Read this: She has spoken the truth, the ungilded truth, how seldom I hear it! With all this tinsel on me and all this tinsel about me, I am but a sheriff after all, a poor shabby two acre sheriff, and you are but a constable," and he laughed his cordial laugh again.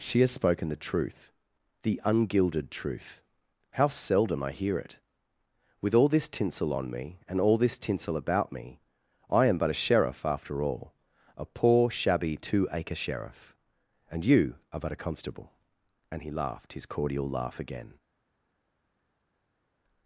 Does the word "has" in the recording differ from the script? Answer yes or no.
no